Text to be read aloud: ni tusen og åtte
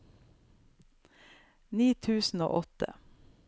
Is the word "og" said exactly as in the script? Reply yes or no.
yes